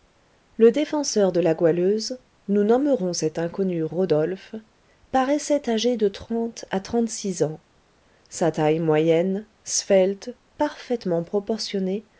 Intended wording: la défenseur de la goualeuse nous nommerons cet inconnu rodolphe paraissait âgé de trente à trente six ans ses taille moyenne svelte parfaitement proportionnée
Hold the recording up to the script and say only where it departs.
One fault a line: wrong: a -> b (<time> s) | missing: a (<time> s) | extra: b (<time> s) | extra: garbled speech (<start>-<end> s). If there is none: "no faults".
wrong: la -> le (0.6 s)
wrong: ses -> sa (8.3 s)